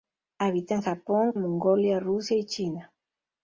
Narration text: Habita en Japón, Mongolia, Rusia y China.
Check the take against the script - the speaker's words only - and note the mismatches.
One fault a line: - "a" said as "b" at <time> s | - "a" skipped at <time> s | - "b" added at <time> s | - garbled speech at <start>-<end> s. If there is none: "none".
none